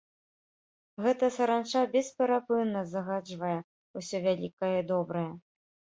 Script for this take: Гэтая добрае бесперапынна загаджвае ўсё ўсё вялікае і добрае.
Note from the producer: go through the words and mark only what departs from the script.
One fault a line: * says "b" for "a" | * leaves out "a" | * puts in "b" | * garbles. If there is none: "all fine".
* says "саранча" for "добрае"
* leaves out "ўсё"